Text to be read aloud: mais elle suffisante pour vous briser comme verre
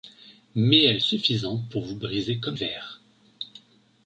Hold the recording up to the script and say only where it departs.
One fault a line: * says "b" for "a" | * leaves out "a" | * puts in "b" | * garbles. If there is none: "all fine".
all fine